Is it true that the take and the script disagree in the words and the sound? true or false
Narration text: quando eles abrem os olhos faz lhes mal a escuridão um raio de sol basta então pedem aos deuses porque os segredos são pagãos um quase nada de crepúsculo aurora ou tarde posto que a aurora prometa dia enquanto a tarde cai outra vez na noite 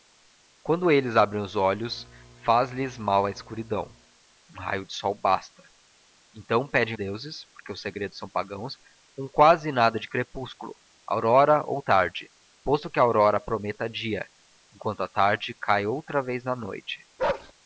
true